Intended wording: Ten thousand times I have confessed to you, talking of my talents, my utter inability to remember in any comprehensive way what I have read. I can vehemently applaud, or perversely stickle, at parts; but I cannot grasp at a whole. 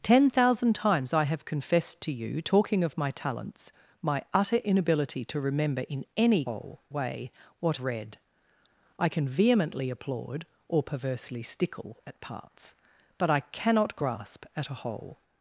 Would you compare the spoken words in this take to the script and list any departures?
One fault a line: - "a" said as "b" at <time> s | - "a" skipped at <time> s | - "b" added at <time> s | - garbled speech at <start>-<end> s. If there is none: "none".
- "comprehensive" said as "whole" at 6.5 s
- "I have" skipped at 7.8 s